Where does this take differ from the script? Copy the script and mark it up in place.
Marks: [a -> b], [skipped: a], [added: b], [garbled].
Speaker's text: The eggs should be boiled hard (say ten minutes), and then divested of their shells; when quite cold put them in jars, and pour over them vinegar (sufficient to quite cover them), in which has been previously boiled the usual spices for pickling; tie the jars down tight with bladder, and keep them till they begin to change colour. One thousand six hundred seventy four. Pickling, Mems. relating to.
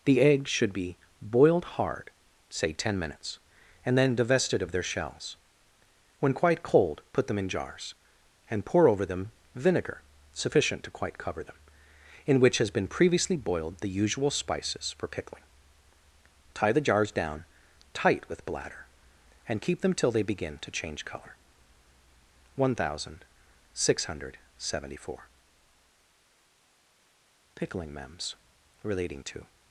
The eggs should be boiled hard (say ten minutes), and then divested of their shells; when quite cold put them in jars, and pour over them vinegar (sufficient to quite cover them), in which has been previously boiled the usual spices for pickling; tie the jars down tight with bladder, and keep them till they begin to change colour. One thousand six hundred seventy four. Pickling, Mems. relating to.